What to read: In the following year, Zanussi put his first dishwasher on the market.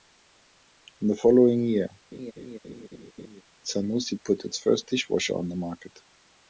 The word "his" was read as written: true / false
false